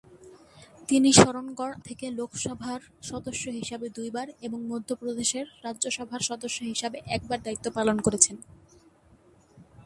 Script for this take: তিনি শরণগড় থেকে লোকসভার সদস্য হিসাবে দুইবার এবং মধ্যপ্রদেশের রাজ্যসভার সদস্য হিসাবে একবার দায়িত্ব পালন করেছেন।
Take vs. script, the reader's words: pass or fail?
pass